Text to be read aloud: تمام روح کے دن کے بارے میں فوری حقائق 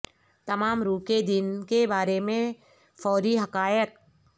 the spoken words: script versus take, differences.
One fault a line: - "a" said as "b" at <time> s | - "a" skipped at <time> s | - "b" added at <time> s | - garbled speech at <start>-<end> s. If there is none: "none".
none